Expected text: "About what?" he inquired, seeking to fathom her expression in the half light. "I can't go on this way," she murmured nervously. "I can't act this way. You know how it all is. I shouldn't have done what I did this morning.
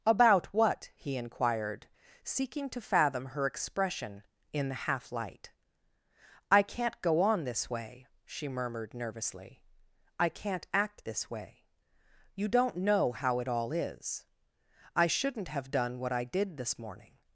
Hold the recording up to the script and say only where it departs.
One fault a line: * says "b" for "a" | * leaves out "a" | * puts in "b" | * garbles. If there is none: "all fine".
* puts in "don't"